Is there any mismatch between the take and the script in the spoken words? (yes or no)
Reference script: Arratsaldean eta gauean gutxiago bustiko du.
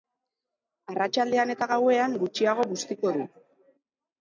no